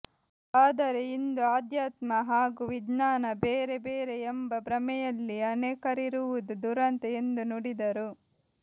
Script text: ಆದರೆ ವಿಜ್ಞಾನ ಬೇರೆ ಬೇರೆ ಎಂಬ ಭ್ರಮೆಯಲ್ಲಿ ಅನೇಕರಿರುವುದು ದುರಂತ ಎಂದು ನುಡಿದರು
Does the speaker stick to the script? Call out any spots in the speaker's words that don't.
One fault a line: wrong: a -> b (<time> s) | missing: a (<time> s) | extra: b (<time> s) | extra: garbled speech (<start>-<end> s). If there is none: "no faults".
extra: ಇಂದು ಆಧ್ಯಾತ್ಮ ಹಾಗೂ (1.1 s)